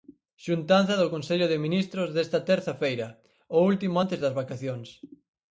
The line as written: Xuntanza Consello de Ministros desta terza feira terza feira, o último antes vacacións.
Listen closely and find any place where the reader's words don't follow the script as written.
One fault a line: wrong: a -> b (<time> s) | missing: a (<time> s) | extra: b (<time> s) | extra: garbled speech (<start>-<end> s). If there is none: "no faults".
extra: do (1.0 s)
missing: terza feira (3.1 s)
extra: das (4.2 s)